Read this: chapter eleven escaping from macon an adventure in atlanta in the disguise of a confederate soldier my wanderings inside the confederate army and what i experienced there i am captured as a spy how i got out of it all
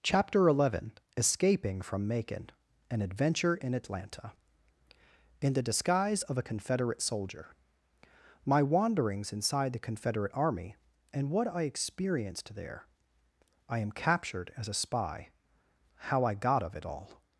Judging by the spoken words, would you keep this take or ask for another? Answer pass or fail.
fail